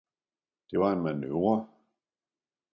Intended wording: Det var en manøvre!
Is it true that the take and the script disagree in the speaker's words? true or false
false